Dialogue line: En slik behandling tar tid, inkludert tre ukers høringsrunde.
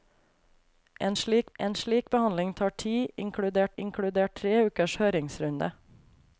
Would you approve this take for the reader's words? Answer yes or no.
no